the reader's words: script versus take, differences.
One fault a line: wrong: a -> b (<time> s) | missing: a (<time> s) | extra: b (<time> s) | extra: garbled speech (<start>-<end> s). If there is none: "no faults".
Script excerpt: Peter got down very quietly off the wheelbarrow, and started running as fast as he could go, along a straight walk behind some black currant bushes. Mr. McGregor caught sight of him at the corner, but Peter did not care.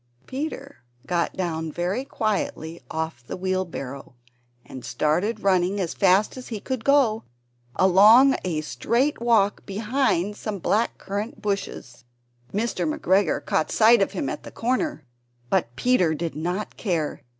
no faults